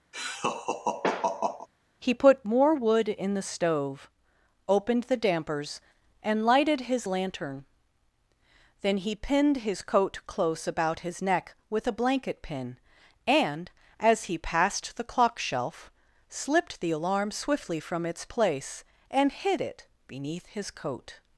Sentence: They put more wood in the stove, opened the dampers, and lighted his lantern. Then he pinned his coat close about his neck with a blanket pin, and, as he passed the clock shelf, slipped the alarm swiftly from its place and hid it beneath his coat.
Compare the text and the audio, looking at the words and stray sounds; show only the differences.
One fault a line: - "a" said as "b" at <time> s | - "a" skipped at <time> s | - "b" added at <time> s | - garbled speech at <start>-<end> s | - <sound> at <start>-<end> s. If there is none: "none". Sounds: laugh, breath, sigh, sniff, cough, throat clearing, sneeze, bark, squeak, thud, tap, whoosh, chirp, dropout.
- laugh at 0.1-1.7 s
- "They" said as "He" at 2.0 s